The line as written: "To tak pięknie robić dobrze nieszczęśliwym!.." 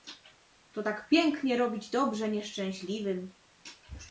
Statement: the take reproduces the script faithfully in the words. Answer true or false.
true